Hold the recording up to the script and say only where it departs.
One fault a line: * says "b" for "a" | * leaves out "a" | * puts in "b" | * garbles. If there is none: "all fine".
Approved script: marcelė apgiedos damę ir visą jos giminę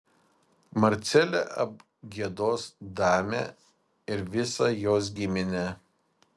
all fine